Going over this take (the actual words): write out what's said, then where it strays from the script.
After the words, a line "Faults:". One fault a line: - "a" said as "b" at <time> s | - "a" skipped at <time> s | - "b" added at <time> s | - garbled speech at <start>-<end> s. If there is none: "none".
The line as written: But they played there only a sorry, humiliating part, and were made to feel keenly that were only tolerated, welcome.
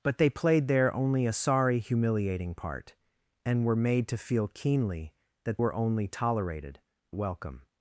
But they played there only a sorry, humiliating part, and were made to feel keenly that were only tolerated, welcome.
Faults:
none